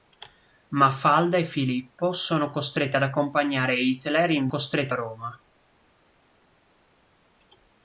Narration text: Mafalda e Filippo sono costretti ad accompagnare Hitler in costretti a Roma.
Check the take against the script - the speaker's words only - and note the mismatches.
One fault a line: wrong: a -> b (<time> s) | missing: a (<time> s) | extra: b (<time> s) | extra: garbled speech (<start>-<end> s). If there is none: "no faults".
no faults